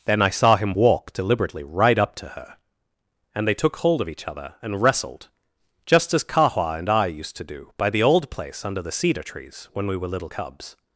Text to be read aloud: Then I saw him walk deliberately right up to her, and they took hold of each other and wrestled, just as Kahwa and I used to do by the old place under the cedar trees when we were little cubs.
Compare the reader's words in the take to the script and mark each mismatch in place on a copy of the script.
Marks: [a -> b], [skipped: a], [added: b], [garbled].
Then I saw him walk deliberately right up to her, and they took hold of each other and wrestled, just as Kahwa and I used to do by the old place under the cedar trees when we were little cubs.